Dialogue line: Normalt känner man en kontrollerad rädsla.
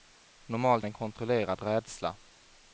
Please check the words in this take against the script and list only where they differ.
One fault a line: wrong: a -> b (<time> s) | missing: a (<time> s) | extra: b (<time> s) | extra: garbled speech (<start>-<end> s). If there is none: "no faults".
missing: känner man (0.8 s)